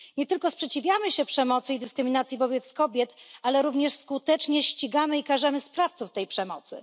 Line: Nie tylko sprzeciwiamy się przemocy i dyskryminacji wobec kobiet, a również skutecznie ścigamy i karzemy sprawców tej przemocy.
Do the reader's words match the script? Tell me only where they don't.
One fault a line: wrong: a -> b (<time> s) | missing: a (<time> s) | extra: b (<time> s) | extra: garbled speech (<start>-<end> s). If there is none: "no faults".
wrong: a -> ale (3.4 s)